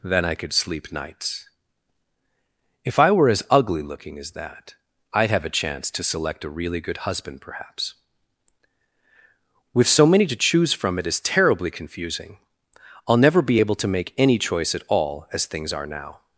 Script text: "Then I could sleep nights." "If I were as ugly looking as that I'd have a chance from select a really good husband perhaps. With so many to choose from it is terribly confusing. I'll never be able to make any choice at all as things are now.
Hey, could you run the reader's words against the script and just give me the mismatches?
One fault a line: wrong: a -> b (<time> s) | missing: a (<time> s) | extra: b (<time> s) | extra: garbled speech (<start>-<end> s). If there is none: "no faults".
wrong: from -> to (5.9 s)